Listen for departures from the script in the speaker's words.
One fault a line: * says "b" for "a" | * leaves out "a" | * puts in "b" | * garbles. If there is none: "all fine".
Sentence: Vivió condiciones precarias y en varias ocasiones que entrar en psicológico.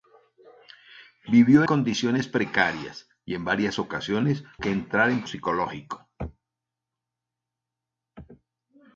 all fine